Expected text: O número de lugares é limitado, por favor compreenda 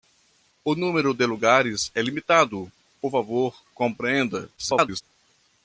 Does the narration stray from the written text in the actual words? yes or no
yes